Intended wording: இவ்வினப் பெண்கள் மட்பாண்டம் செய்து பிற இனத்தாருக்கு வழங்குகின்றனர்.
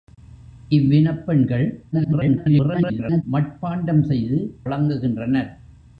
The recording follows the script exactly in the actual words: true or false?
false